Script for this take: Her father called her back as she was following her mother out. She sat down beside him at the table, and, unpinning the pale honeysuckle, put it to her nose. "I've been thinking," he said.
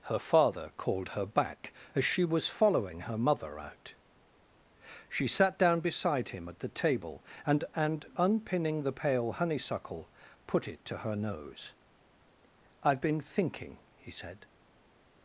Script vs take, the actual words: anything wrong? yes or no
yes